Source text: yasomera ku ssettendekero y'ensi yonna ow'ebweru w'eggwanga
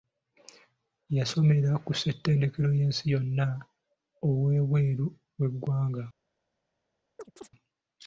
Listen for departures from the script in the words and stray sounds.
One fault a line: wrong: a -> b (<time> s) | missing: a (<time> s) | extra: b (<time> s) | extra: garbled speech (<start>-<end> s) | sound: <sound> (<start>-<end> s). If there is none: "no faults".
sound: chirp (7.2-7.5 s)